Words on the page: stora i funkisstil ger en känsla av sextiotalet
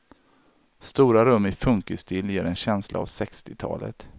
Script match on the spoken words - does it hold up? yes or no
no